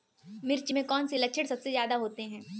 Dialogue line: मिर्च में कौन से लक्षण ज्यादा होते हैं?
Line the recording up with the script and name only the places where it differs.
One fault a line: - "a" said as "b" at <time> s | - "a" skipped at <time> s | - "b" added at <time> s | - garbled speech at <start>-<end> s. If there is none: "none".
- "सबसे" added at 1.5 s